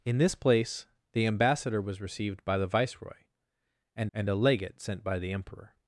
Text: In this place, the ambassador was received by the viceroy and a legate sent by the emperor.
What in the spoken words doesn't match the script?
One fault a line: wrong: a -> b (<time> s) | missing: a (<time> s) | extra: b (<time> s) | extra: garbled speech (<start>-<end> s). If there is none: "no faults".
extra: and (4.1 s)